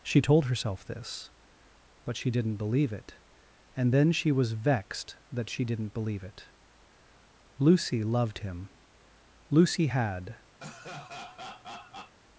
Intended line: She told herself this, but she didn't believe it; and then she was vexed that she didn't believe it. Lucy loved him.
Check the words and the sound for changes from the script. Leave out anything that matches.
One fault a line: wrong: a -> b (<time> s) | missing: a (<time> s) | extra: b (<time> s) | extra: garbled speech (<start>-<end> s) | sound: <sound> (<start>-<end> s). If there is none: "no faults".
extra: Lucy had (9.5 s)
sound: laugh (10.6-12.1 s)